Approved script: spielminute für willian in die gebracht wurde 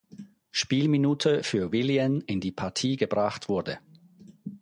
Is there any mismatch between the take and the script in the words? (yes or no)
yes